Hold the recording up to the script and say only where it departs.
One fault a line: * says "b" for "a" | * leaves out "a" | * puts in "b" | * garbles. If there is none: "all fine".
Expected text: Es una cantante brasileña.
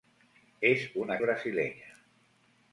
* leaves out "cantante"